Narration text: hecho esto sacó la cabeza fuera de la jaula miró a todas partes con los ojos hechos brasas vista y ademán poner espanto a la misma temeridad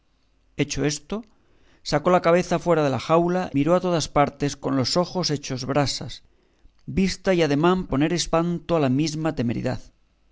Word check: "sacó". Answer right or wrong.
right